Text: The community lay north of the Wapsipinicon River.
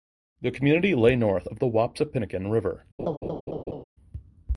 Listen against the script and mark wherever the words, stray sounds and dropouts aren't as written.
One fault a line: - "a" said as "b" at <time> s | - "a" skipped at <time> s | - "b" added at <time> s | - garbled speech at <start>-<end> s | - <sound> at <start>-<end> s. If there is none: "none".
- laugh at 3.0-3.8 s